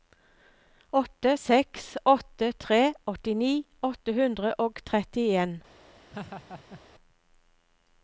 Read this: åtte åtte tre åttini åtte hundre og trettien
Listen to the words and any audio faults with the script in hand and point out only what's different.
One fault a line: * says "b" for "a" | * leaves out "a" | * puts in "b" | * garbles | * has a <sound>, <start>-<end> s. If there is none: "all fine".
* puts in "seks"
* has a laugh, 6.1-6.8 s